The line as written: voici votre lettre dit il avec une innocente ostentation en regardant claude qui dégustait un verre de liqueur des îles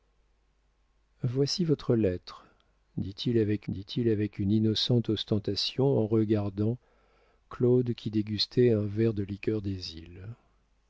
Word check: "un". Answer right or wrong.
right